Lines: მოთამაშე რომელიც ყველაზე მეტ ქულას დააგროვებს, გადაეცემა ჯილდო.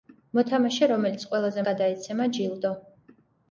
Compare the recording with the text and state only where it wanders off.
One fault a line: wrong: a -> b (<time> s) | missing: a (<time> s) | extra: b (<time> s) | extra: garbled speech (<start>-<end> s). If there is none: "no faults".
missing: მეტ ქულას დააგროვებს (1.6 s)